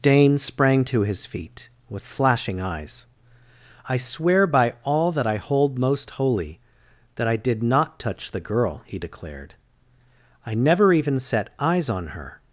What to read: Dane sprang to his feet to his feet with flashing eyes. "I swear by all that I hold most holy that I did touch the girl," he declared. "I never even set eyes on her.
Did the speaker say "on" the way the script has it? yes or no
yes